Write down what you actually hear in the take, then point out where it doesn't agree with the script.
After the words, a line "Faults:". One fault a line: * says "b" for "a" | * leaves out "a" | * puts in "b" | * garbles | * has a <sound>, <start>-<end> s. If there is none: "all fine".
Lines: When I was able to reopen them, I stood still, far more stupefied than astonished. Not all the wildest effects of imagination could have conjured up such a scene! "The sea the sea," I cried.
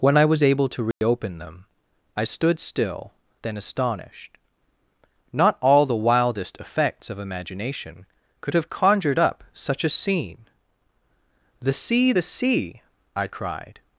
When I was able to reopen them, I stood still, than astonished. Not all the wildest effects of imagination could have conjured up such a scene! "The sea the sea," I cried.
Faults:
* has a dropout, 0.9-1.0 s
* leaves out "far more stupefied"